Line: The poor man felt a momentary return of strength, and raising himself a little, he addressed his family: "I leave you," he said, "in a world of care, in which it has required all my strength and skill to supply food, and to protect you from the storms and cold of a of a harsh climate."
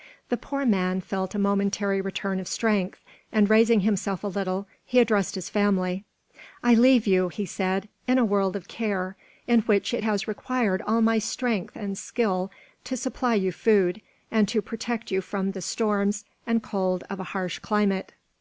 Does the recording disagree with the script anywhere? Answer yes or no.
yes